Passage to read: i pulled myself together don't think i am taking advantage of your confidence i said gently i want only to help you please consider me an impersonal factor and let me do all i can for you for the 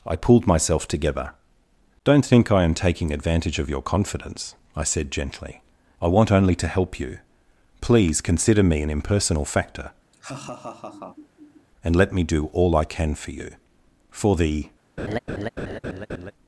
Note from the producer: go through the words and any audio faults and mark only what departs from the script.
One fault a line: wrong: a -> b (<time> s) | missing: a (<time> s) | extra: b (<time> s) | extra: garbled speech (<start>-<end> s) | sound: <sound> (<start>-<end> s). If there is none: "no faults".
sound: laugh (10.1-11.7 s)
sound: laugh (15.0-16.3 s)